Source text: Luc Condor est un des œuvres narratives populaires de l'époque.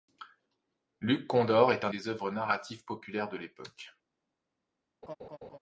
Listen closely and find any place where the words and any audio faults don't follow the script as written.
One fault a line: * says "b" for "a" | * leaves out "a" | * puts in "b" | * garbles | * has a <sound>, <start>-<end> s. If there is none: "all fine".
* has a laugh, 5.0-5.6 s